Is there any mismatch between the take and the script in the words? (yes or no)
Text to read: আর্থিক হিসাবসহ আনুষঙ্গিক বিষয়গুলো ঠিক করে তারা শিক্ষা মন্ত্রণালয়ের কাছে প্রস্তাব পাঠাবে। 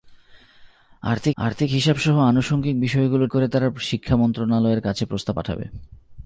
yes